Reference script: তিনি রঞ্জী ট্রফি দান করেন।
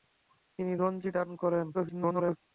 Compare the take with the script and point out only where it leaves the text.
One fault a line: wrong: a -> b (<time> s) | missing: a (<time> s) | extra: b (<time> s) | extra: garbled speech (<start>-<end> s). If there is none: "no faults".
missing: ট্রফি (1.1 s)
extra: garbled speech (1.7-2.4 s)